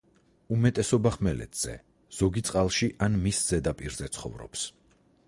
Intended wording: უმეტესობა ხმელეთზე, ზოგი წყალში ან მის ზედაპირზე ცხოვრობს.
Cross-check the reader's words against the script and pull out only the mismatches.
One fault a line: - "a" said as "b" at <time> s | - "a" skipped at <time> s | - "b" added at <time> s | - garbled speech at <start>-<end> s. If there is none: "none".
none